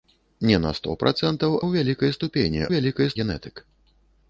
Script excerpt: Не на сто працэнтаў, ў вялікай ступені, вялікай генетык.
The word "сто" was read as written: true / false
true